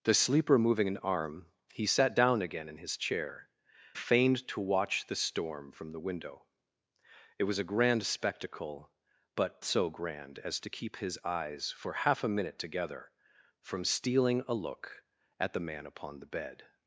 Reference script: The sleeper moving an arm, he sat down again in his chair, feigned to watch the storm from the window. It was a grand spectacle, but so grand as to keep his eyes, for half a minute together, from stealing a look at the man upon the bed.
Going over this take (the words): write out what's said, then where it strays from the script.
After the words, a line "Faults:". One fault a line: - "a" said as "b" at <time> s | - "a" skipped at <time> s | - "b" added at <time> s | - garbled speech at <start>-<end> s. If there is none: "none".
The sleeper moving an arm, he sat down again in his chair, feigned to watch the storm from the window. It was a grand spectacle, but so grand as to keep his eyes, for half a minute together, from stealing a look at the man upon the bed.
Faults:
none